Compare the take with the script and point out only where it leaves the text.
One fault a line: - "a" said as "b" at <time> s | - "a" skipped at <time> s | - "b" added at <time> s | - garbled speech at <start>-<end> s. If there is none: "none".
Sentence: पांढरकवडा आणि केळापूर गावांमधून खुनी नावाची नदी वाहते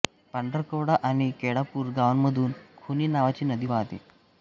none